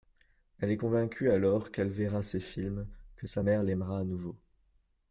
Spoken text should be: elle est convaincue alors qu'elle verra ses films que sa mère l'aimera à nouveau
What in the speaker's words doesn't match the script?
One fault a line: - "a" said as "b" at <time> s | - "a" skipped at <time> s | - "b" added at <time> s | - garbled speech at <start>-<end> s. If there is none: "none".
none